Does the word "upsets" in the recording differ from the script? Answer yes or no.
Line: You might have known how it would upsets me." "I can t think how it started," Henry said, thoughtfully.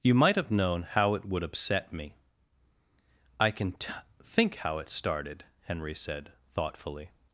yes